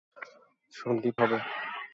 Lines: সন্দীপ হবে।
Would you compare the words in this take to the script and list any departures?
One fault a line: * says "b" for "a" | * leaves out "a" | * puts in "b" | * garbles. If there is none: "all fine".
all fine